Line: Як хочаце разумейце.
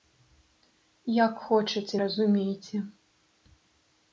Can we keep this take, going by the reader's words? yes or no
yes